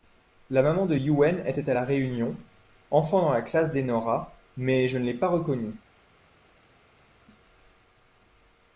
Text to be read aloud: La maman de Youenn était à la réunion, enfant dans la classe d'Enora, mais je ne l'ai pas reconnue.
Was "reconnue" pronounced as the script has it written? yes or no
yes